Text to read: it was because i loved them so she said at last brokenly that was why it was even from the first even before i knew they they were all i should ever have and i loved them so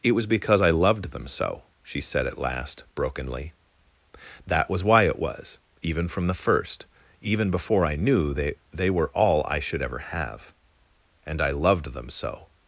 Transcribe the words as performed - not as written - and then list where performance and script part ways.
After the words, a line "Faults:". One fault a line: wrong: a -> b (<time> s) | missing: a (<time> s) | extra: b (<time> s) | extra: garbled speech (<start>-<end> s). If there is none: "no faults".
it was because i loved them so she said at last brokenly that was why it was even from the first even before i knew they they were all i should ever have and i loved them so
Faults:
no faults